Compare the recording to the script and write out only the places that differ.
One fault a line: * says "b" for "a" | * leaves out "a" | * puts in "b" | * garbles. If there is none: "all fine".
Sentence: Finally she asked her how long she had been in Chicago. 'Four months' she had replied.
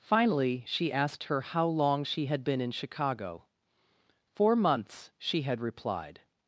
all fine